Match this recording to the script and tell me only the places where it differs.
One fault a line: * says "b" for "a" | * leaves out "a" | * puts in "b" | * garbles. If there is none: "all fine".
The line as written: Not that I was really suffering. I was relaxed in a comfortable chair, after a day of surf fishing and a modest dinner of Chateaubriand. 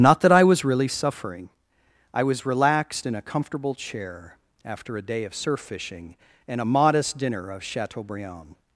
all fine